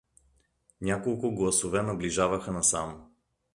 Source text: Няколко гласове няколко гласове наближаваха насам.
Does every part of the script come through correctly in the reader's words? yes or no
no